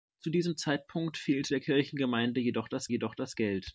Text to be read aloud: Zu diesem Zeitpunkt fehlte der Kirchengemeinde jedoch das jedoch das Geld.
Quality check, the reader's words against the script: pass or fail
pass